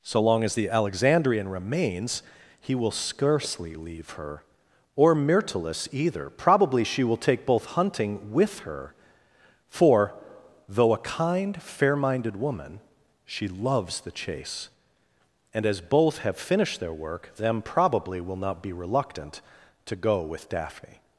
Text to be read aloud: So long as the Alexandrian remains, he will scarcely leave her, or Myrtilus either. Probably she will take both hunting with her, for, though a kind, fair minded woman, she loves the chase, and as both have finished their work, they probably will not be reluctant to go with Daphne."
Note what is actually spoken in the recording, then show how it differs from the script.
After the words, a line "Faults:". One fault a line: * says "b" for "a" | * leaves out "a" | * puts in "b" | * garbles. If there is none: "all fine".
So long as the Alexandrian remains, he will scarcely leave her, or Myrtilus either. Probably she will take both hunting with her, for, though a kind, fair minded woman, she loves the chase, and as both have finished their work, them probably will not be reluctant to go with Daphne."
Faults:
* says "them" for "they"